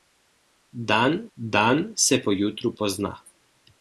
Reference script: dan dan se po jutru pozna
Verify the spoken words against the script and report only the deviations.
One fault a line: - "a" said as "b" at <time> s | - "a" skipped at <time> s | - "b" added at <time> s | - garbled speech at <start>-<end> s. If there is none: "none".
none